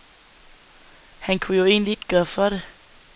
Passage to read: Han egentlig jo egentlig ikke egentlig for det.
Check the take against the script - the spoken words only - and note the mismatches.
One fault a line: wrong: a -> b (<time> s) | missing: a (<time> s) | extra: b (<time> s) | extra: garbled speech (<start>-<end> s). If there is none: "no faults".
wrong: egentlig -> kunne (1.4 s)
wrong: egentlig -> gøre (2.1 s)